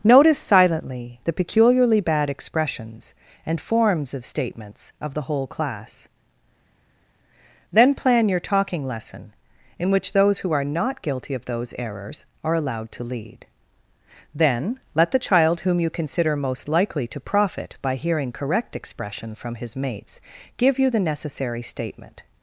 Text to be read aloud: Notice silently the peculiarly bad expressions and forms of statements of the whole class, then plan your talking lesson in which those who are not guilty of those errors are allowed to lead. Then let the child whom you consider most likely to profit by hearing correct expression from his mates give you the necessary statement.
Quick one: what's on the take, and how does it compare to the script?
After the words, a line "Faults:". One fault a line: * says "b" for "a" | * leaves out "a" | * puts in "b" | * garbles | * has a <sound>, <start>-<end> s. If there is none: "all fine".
Notice silently the peculiarly bad expressions and forms of statements of the whole class, then plan your talking lesson in which those who are not guilty of those errors are allowed to lead. Then let the child whom you consider most likely to profit by hearing correct expression from his mates give you the necessary statement.
Faults:
all fine